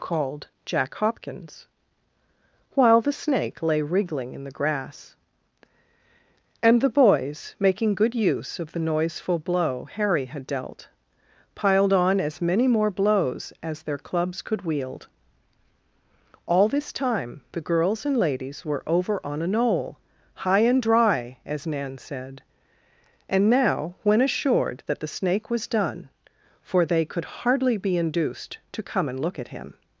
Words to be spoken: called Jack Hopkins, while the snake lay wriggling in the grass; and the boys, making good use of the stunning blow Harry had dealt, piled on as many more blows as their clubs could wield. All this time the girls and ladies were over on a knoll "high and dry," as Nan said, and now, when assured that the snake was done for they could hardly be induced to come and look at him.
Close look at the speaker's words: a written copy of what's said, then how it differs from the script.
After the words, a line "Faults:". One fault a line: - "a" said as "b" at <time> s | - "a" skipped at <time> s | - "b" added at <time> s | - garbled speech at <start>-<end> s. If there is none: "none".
called Jack Hopkins, while the snake lay wriggling in the grass; and the boys, making good use of the noiseful blow Harry had dealt, piled on as many more blows as their clubs could wield. All this time the girls and ladies were over on a knoll "high and dry," as Nan said, and now, when assured that the snake was done for they could hardly be induced to come and look at him.
Faults:
- "stunning" said as "noiseful" at 8.8 s